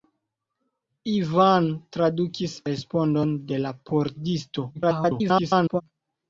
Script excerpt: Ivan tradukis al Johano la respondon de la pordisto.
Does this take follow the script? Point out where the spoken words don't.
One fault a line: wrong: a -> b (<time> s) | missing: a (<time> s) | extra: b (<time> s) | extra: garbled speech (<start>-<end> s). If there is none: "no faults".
missing: al Johano la (2.6 s)
extra: garbled speech (4.7-5.8 s)